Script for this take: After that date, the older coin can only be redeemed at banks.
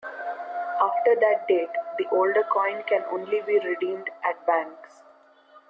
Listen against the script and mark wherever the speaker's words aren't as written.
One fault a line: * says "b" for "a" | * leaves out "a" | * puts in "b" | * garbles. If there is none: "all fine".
all fine